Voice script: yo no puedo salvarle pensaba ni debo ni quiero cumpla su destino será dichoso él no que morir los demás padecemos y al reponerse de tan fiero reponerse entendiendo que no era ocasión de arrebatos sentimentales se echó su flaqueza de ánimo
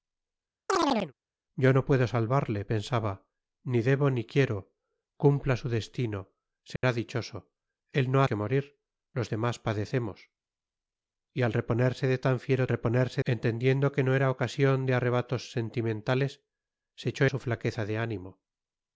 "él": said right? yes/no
yes